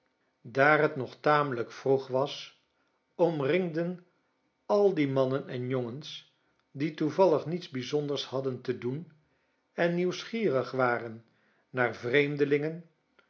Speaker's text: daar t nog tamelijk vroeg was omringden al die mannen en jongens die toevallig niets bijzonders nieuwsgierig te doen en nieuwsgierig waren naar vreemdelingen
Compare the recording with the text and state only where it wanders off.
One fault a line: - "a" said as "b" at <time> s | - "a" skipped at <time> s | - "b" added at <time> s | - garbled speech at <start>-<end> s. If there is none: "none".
- "nieuwsgierig" said as "hadden" at 8.2 s